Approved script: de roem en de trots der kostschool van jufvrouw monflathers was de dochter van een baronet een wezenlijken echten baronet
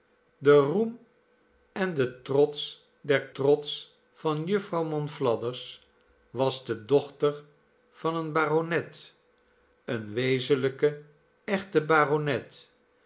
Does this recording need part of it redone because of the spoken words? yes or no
yes